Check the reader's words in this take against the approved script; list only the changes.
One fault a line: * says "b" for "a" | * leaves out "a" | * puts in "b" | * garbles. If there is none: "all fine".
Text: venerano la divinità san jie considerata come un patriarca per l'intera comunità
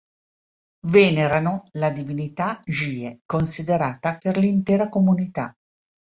* leaves out "san"
* leaves out "come un patriarca"